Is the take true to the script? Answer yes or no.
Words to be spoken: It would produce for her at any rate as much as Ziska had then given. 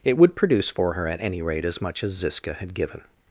no